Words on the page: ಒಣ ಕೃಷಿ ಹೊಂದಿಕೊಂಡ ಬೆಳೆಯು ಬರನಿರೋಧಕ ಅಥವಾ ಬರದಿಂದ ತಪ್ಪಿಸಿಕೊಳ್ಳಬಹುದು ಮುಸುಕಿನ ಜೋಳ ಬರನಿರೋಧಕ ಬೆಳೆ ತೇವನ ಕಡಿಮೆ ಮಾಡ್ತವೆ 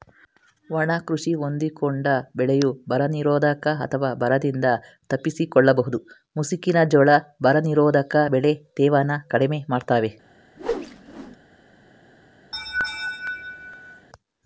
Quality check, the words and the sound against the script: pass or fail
fail